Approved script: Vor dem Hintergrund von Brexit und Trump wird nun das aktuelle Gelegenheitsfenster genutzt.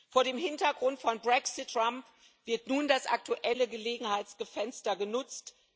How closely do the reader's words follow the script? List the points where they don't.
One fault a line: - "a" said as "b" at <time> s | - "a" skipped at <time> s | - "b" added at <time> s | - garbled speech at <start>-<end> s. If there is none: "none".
- "und" skipped at 1.7 s